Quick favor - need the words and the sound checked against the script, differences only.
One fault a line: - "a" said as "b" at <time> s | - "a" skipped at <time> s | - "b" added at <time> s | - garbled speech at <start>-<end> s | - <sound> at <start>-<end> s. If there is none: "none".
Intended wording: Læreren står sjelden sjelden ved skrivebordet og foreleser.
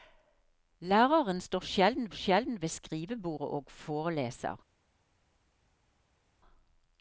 none